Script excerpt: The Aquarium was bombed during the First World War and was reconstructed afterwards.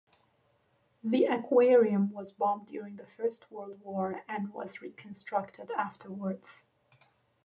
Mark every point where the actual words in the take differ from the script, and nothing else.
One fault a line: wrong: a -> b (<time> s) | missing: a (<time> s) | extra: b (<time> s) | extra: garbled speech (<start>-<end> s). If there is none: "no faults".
no faults